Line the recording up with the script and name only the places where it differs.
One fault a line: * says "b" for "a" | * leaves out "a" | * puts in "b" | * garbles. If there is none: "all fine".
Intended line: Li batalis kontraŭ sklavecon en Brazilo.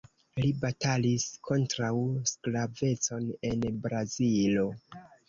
all fine